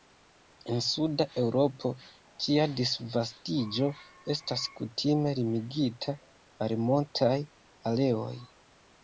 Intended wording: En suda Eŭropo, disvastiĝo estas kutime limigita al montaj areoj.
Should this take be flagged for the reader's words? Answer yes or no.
yes